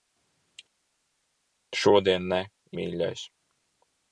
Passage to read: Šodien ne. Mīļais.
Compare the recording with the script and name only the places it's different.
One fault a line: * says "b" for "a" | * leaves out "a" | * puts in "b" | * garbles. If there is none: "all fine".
all fine